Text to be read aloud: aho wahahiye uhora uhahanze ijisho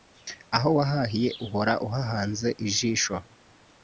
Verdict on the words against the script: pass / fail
pass